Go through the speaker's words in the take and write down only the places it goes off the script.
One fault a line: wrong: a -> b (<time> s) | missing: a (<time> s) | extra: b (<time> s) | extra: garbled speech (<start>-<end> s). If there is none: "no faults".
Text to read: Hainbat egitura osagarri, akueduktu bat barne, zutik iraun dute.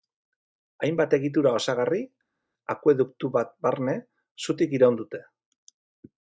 no faults